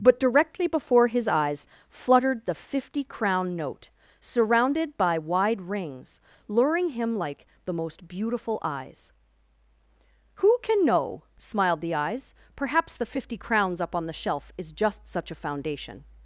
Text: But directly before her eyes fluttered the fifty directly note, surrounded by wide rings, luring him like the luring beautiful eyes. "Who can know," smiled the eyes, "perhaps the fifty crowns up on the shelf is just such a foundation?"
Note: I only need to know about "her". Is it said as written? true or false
false